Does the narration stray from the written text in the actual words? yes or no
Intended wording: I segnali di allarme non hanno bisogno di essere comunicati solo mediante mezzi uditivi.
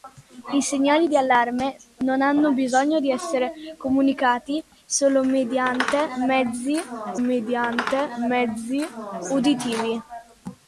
yes